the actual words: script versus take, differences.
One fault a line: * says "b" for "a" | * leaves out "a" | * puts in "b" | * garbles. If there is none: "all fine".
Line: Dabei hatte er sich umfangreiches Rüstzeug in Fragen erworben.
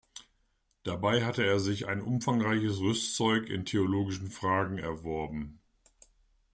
* puts in "ein"
* puts in "theologischen"